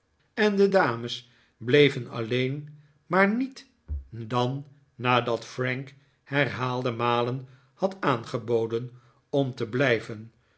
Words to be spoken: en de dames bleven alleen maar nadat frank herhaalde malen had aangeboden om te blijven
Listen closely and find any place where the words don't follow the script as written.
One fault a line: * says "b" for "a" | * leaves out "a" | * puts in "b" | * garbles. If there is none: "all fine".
* puts in "niet dan"